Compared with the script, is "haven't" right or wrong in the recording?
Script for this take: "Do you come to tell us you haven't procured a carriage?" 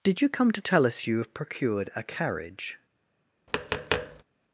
wrong